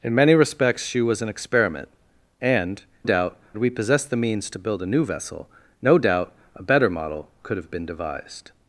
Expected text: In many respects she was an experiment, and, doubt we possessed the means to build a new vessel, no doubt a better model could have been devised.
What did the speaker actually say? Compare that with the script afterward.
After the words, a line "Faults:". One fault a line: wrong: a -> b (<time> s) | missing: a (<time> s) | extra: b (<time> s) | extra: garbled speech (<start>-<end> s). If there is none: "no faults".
In many respects she was an experiment, and, doubt we possessed the means to build a new vessel, no doubt a better model could have been devised.
Faults:
no faults